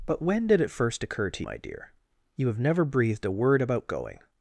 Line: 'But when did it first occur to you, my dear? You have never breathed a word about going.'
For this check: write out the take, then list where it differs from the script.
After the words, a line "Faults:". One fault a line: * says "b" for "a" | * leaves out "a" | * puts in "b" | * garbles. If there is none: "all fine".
'But when did it first occur to my dear? You have never breathed a word about going.'
Faults:
* leaves out "you"